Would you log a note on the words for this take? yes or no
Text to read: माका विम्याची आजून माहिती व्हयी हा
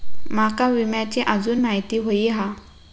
no